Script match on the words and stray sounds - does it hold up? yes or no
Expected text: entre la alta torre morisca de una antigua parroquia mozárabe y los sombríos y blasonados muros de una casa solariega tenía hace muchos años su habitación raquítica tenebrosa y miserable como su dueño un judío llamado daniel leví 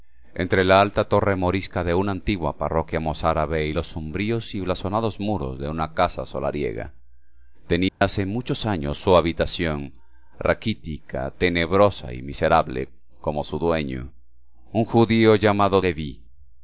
no